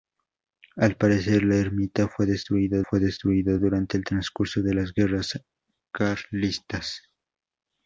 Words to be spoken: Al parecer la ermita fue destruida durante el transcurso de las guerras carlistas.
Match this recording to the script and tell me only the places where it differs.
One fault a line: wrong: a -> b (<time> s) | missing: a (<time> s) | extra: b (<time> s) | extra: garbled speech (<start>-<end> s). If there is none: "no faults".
extra: fue destruida (2.8 s)